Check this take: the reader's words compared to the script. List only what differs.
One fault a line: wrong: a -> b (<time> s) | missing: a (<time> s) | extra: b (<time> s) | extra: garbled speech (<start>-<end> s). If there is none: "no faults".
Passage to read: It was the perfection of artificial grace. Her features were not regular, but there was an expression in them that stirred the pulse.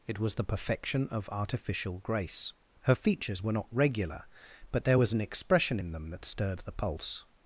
no faults